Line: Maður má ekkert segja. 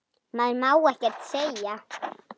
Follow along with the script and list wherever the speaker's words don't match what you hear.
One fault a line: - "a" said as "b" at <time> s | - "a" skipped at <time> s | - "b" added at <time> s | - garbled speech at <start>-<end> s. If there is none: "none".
none